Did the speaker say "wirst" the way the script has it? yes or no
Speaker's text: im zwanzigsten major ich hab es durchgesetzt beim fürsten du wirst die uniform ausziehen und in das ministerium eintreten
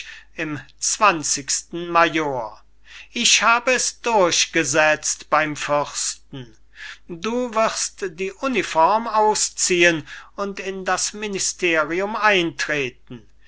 yes